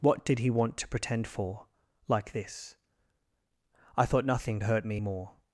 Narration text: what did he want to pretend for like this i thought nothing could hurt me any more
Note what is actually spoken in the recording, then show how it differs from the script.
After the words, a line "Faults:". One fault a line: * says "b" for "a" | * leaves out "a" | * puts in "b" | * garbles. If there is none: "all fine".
what did he want to pretend for like this i thought nothing hurt me more
Faults:
* leaves out "could"
* leaves out "any"